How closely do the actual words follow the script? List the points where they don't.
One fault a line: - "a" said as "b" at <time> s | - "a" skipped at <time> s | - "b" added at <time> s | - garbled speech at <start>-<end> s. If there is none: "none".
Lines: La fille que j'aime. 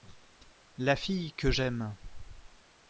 none